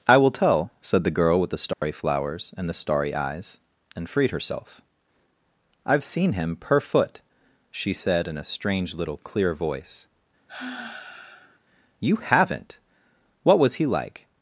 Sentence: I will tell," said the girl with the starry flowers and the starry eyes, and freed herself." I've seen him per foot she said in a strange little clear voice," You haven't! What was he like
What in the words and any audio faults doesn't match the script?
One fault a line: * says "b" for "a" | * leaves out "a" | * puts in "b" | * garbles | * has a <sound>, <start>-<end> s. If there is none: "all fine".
* has a dropout, 1.7-1.8 s
* has a sigh, 10.5-11.6 s